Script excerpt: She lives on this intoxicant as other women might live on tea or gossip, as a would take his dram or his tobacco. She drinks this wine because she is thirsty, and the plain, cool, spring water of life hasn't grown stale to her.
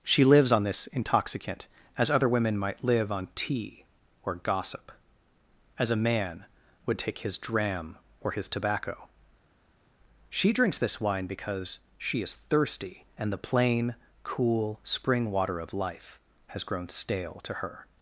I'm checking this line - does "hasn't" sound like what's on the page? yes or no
no